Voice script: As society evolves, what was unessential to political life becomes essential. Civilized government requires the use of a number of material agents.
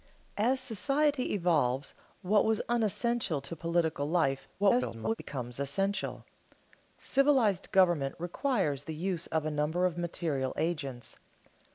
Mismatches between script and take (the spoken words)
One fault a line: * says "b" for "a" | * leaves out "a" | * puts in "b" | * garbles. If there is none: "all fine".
* garbles